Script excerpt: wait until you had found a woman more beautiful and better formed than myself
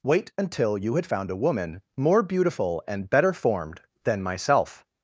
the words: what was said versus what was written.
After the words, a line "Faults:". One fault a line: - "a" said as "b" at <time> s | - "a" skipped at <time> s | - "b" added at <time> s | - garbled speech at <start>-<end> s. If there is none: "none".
wait until you had found a woman more beautiful and better formed than myself
Faults:
none